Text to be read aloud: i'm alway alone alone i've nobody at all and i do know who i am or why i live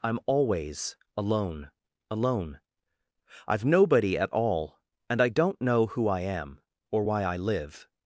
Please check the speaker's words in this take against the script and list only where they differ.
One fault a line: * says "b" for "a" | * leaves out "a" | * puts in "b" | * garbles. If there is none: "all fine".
* says "always" for "alway"
* says "don't" for "do"